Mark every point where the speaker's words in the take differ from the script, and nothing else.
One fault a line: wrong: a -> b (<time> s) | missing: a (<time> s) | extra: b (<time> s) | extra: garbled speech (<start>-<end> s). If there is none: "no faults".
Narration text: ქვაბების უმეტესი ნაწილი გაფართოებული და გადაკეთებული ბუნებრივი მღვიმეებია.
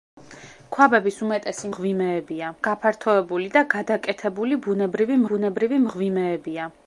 wrong: ნაწილი -> მღვიმეებია (1.7 s)
extra: ბუნებრივი (5.3 s)